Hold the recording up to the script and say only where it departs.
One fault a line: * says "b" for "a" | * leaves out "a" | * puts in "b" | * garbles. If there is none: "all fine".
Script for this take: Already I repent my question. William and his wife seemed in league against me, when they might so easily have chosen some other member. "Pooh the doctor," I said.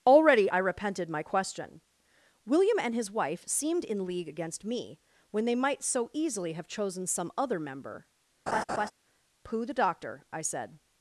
* says "repented" for "repent"